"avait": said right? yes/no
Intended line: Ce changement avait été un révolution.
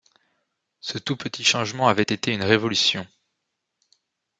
yes